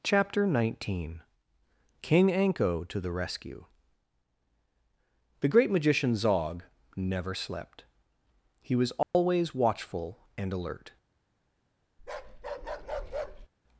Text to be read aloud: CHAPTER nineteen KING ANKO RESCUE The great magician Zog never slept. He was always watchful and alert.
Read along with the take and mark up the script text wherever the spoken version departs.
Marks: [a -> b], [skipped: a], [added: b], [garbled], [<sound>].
CHAPTER nineteen KING ANKO [added: TO THE] RESCUE The great magician Zog never slept. He was always [dropout] watchful and alert. [bark]